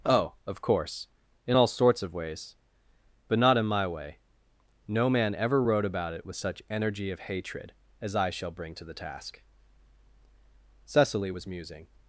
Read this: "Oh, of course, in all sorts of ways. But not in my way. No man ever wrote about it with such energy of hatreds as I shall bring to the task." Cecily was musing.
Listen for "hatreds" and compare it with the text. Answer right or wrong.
wrong